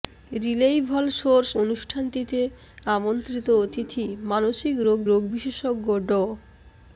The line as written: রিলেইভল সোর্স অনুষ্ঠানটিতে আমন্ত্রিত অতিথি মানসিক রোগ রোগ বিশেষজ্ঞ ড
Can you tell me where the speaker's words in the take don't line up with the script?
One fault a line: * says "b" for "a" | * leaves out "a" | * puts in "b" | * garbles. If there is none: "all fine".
all fine